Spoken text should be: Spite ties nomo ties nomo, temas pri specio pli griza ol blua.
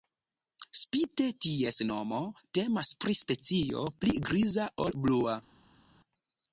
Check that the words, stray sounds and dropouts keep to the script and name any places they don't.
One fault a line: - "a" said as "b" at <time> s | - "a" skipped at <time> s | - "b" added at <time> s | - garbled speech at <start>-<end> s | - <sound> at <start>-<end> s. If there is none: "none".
- "ties nomo" skipped at 2.2 s